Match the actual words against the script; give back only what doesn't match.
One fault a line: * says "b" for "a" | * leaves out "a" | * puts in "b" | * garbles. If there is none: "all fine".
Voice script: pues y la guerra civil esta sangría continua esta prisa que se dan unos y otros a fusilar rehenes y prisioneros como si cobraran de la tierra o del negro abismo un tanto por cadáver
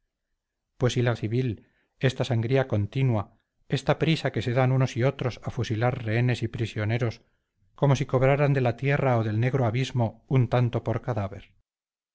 * leaves out "guerra"